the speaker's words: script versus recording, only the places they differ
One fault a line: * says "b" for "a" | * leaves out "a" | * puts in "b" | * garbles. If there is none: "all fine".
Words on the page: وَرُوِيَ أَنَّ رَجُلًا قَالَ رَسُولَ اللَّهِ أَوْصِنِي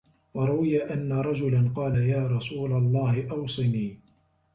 * puts in "يَا"